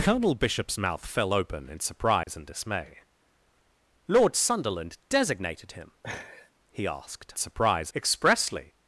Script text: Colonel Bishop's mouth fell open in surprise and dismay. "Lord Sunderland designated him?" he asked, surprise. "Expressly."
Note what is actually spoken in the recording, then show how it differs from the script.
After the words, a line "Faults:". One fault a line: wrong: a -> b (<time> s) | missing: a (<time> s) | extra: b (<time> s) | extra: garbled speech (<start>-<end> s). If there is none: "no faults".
Colonel Bishop's mouth fell open in surprise and dismay. "Lord Sunderland designated him?" he asked, surprise. "Expressly."
Faults:
no faults